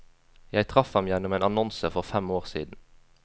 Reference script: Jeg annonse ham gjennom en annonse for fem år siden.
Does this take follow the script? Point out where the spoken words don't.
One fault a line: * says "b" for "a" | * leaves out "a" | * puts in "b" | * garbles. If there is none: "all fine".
* says "traff" for "annonse"